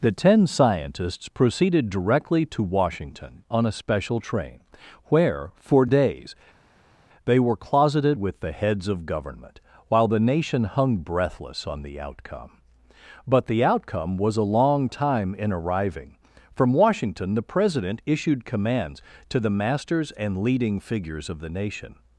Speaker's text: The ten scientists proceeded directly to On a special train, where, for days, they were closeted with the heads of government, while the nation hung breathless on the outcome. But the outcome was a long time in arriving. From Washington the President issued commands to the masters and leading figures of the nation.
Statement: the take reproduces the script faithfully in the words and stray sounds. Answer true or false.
false